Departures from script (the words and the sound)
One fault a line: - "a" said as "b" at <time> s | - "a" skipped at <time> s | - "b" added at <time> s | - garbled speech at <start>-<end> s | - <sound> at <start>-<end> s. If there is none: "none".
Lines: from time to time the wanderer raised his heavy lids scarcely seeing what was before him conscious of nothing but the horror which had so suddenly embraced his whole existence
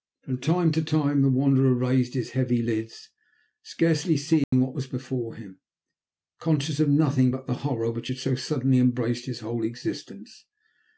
- dropout at 4.4-4.5 s